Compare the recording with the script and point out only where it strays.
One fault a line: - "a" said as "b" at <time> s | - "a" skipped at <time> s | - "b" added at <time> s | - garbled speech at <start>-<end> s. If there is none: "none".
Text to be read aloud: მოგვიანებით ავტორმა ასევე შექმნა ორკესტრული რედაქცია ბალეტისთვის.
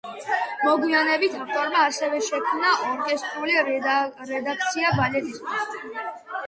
none